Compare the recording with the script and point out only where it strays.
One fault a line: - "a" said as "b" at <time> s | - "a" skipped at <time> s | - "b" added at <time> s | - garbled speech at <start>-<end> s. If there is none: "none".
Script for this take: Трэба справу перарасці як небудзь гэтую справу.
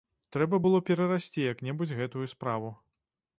- "справу" said as "было" at 0.6 s